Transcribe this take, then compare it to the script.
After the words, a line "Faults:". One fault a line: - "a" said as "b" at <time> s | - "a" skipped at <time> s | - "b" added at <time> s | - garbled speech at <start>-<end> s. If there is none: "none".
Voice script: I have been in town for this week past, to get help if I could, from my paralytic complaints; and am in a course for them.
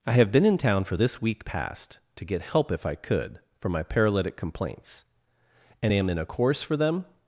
I have been in town for this week past, to get help if I could, for my paralytic complaints; and am in a course for them.
Faults:
- "from" said as "for" at 3.6 s